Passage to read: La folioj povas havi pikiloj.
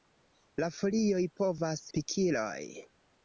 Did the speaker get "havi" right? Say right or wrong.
wrong